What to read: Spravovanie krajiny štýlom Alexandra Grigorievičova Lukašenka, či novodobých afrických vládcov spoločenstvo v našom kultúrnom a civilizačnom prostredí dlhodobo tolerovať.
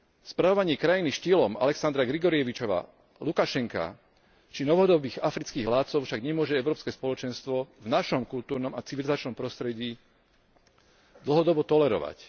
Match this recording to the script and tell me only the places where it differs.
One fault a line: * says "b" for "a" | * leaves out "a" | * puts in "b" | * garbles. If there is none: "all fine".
* puts in "však nemôže Európske"